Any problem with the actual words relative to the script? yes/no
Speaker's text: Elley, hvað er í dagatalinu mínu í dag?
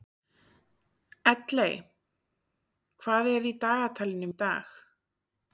yes